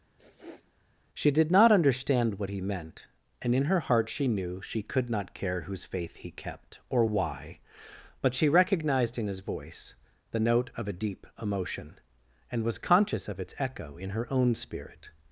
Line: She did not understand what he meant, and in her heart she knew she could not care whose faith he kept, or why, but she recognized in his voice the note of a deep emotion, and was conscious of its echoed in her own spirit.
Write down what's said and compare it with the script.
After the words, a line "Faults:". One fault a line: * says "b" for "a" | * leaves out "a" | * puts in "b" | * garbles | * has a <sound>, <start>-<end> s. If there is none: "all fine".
She did not understand what he meant, and in her heart she knew she could not care whose faith he kept, or why, but she recognized in his voice the note of a deep emotion, and was conscious of its echo in her own spirit.
Faults:
* has a sniff, 0.2-0.7 s
* says "echo" for "echoed"